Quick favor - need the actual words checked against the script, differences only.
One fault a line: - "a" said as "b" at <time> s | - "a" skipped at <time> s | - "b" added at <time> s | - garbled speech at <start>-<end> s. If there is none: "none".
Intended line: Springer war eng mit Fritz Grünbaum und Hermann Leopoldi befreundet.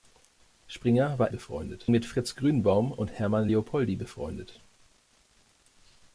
- "eng" said as "befreundet" at 1.3 s